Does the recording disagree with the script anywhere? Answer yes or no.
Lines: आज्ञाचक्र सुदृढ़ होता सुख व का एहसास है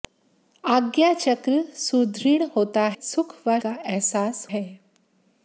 no